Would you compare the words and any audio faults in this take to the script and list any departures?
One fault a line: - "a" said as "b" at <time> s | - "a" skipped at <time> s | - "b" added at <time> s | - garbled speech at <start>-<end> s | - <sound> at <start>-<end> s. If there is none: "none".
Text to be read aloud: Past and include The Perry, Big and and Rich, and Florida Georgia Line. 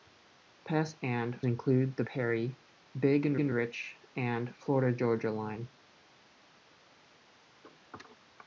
none